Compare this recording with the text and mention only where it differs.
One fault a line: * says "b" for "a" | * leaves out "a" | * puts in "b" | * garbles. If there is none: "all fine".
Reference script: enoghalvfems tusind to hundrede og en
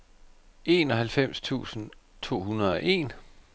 all fine